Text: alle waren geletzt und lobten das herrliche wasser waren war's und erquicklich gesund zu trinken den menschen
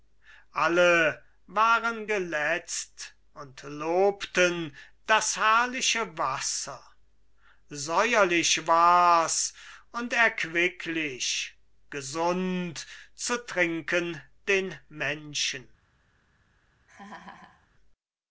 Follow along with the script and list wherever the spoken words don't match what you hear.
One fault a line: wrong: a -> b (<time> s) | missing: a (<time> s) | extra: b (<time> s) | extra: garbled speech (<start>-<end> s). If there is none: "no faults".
wrong: waren -> säuerlich (7.7 s)